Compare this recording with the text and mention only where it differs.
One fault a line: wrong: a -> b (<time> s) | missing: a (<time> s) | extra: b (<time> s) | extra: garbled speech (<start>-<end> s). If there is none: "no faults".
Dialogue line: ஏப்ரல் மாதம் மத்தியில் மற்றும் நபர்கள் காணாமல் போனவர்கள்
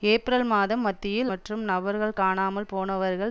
no faults